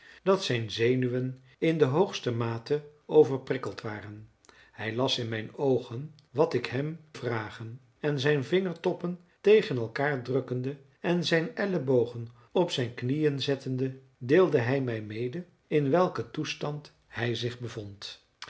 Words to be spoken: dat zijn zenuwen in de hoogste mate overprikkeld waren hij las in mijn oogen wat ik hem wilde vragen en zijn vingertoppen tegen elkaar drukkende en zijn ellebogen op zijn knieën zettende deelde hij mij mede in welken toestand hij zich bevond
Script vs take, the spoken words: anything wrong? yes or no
yes